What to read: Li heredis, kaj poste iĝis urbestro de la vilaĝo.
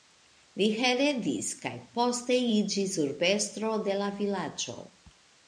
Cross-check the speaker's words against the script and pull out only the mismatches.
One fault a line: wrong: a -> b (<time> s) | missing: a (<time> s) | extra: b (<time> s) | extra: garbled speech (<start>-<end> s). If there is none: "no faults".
no faults